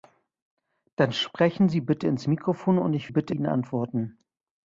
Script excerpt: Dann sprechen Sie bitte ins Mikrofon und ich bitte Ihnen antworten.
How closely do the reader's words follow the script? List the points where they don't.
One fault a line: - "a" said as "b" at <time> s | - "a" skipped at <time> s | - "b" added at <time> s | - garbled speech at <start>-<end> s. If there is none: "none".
none